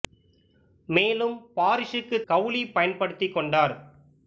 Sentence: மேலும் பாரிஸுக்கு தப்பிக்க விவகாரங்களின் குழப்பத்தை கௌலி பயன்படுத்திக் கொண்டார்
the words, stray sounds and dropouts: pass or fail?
fail